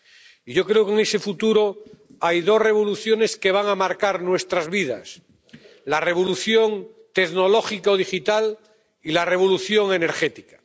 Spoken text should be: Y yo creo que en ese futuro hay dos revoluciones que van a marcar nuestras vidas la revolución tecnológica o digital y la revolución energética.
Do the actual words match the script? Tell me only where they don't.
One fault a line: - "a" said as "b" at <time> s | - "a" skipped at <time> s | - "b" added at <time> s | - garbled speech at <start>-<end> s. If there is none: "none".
none